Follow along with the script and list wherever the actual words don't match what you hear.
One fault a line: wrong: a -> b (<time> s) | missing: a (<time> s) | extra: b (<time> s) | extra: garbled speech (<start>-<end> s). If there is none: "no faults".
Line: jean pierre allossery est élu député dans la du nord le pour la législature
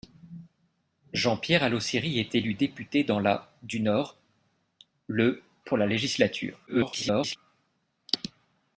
extra: garbled speech (6.7-7.4 s)